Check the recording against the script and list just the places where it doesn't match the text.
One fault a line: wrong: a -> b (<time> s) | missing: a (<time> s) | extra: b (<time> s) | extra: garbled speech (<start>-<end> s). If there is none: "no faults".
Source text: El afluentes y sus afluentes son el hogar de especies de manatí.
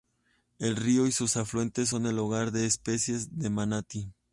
wrong: afluentes -> río (0.8 s)